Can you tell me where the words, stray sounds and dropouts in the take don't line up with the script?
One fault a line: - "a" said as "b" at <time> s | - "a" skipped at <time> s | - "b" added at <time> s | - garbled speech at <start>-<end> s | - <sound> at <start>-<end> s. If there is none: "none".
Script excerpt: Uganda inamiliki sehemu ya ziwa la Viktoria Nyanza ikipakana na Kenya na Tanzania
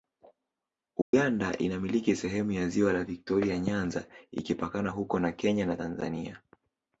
- dropout at 1.0-1.1 s
- "huko" added at 4.9 s